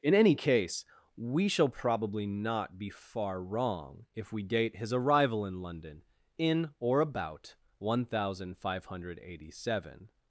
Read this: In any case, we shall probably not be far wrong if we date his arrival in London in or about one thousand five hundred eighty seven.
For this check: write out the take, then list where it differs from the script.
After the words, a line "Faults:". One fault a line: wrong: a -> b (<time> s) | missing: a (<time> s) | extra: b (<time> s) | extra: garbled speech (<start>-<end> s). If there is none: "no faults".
In any case, we shall probably not be far wrong if we date his arrival in London in or about one thousand five hundred eighty seven.
Faults:
no faults